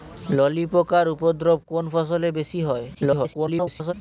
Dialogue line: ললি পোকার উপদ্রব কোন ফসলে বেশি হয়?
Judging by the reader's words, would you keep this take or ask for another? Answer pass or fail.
fail